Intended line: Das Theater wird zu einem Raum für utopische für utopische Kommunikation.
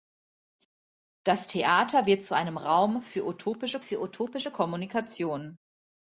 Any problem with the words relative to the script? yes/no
no